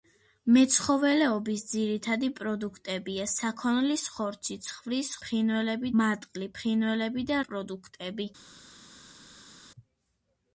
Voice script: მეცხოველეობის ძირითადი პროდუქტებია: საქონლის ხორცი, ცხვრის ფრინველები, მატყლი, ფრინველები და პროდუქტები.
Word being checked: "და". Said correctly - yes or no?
yes